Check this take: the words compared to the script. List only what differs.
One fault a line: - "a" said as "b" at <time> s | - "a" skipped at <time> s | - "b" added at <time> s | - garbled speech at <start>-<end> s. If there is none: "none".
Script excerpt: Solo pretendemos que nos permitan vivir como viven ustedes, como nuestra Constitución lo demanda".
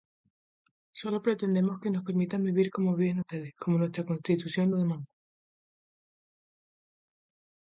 none